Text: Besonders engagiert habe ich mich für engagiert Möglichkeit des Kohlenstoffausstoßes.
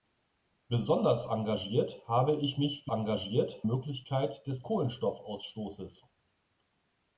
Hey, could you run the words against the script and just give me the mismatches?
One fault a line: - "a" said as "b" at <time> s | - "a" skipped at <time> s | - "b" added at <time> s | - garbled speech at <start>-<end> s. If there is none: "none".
none